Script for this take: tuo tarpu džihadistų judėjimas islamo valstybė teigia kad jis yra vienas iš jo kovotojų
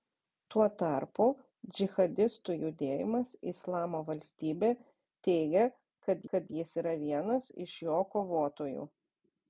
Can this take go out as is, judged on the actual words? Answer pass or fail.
fail